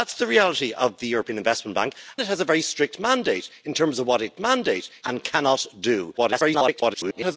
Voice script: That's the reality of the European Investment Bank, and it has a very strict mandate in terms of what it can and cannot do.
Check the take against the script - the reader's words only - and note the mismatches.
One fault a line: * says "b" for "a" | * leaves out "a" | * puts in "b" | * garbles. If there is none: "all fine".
* leaves out "and"
* says "mandate" for "can"
* garbles